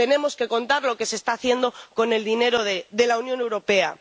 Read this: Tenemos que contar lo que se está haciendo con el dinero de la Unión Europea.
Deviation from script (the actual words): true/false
false